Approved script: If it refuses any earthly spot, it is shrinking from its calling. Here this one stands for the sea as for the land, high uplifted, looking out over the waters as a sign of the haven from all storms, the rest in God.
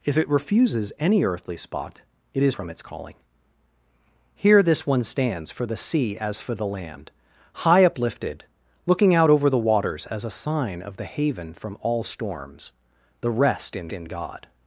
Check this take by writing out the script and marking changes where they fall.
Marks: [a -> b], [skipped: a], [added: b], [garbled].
If it refuses any earthly spot, it is [skipped: shrinking] from its calling. Here this one stands for the sea as for the land, high uplifted, looking out over the waters as a sign of the haven from all storms, the rest in [added: in] God.